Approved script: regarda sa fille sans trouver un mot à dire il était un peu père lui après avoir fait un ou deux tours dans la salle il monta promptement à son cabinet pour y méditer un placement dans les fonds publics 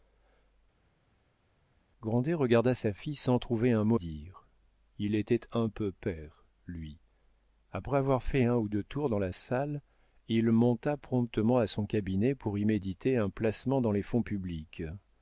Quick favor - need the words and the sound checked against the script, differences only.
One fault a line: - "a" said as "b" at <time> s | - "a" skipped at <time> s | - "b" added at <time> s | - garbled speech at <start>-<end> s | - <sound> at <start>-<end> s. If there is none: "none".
- "à" skipped at 4.0 s